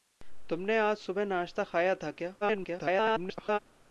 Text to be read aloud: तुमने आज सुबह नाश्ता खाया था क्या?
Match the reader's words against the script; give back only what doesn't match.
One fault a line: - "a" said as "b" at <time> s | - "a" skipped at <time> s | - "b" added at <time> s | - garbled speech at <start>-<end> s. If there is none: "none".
- garbled speech at 2.4-3.6 s